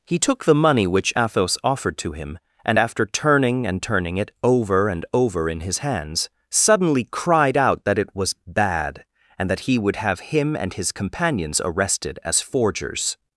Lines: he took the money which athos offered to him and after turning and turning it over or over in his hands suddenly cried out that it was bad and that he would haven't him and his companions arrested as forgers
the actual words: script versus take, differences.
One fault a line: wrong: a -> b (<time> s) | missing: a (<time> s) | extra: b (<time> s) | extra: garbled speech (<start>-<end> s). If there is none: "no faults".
wrong: or -> and (4.9 s)
wrong: haven't -> have (10.0 s)